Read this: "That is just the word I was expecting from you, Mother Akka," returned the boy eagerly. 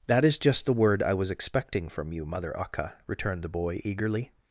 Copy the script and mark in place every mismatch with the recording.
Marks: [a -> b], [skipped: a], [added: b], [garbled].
"That is just the word I was expecting from you, Mother Akka," returned the boy eagerly.